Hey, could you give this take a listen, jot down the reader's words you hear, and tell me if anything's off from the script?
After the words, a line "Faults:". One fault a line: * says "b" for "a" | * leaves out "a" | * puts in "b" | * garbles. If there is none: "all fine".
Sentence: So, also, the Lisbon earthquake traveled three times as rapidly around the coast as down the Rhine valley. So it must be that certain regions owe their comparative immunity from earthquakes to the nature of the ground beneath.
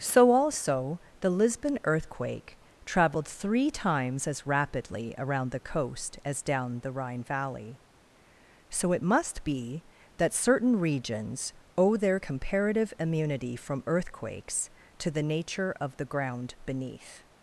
So, also, the Lisbon earthquake traveled three times as rapidly around the coast as down the Rhine valley. So it must be that certain regions owe their comparative immunity from earthquakes to the nature of the ground beneath.
Faults:
all fine